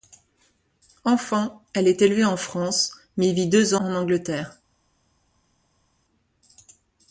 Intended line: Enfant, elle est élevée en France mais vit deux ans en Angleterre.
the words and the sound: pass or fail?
fail